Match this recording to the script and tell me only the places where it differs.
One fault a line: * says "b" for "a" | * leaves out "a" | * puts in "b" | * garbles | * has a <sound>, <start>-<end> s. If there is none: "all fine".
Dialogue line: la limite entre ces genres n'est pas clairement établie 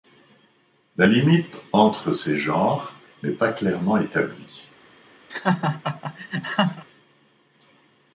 * has a laugh, 5.3-6.8 s